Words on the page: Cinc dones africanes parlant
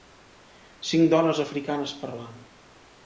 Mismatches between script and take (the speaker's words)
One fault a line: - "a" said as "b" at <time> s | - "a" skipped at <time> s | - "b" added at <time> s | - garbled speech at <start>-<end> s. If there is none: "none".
none